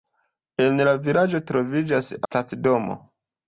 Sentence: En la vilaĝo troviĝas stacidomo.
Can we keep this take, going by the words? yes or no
yes